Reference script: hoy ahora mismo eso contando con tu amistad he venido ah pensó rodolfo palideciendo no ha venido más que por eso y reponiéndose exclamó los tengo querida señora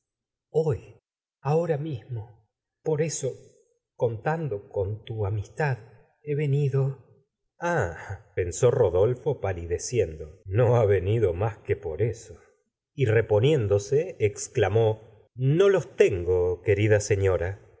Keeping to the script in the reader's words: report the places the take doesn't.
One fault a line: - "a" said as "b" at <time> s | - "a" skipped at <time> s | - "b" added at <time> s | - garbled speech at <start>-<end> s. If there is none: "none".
- "por" added at 2.8 s
- "no" added at 15.3 s